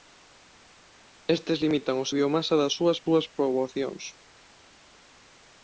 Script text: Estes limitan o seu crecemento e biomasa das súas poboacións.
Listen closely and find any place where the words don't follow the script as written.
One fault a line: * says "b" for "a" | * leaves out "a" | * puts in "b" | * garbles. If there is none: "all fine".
* leaves out "seu crecemento e"
* puts in "súas"